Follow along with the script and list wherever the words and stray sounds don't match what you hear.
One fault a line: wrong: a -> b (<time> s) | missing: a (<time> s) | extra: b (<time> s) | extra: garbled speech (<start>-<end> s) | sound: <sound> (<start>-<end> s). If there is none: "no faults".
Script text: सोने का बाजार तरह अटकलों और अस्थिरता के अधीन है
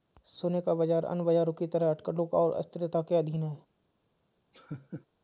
extra: अन्य बाजारों की (1.1 s)
sound: laugh (4.5-5.1 s)